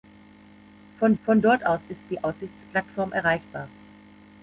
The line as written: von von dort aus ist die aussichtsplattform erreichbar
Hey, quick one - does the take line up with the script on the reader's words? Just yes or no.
yes